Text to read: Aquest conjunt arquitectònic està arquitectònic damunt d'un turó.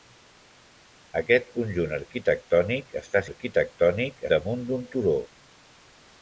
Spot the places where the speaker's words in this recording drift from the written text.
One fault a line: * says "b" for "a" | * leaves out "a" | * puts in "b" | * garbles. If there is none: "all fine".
all fine